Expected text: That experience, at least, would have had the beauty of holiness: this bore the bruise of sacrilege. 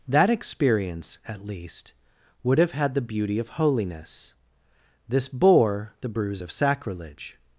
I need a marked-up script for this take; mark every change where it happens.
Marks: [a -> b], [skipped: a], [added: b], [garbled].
That experience, at least, would have had the beauty of holiness: this bore the bruise of sacrilege.